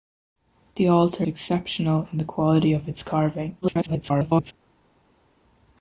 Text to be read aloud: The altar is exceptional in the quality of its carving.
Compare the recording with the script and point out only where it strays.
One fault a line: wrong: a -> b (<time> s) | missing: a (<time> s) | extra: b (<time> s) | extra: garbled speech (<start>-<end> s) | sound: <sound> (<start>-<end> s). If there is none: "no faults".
missing: is (1.3 s)
extra: garbled speech (3.6-4.5 s)